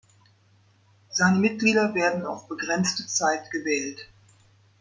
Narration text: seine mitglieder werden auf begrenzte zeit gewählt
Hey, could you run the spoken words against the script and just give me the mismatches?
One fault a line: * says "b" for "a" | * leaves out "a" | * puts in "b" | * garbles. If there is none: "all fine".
all fine